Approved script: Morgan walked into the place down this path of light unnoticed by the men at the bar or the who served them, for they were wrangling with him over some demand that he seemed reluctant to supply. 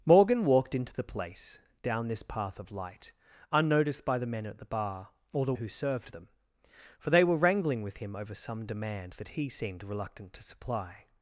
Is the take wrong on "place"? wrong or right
right